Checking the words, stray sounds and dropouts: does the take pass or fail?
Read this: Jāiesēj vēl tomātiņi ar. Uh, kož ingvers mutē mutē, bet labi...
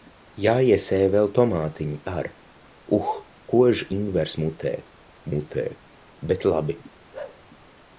fail